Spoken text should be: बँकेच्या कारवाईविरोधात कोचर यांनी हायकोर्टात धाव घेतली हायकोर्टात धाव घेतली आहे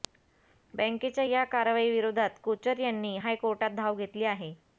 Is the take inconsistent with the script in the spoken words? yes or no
yes